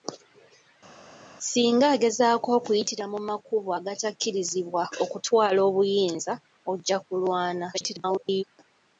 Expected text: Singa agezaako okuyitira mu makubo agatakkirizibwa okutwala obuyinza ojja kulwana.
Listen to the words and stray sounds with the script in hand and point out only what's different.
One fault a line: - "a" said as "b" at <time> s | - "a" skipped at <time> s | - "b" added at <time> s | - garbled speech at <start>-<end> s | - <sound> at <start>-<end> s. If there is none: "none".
- garbled speech at 7.7-8.4 s